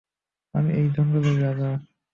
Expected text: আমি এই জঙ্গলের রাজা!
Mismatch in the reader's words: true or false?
false